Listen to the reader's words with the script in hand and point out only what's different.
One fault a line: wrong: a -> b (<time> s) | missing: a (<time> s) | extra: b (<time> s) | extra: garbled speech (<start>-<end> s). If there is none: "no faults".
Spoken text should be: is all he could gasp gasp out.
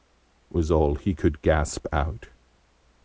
wrong: is -> was (0.5 s)
missing: gasp (1.9 s)